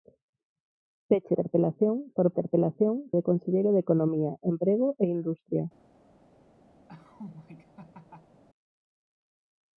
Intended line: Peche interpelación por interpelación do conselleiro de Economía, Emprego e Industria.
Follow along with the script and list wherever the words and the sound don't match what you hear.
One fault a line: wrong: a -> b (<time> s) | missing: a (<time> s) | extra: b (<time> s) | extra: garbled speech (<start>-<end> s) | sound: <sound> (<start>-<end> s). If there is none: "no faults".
sound: laugh (6.9-8.4 s)